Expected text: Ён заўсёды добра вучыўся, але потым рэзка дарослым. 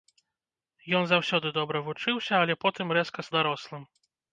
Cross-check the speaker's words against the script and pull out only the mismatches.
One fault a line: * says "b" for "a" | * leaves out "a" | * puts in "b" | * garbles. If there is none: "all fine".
all fine